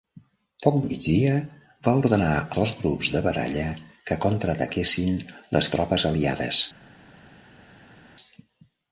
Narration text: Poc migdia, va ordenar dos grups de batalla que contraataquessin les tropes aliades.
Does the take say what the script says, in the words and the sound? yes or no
yes